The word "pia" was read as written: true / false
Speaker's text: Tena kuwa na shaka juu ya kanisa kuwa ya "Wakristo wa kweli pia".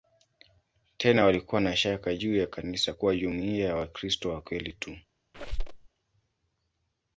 false